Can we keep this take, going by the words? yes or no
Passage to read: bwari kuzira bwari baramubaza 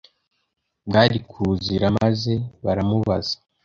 no